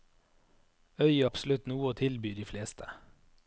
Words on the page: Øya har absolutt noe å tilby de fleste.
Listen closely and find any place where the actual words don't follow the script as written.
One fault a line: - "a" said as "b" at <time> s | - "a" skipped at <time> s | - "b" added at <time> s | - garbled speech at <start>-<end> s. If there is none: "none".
- "har" skipped at 1.3 s